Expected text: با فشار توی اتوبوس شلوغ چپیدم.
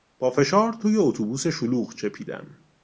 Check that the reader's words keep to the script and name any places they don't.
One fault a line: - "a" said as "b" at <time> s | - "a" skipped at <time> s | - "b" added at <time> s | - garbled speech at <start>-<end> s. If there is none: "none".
none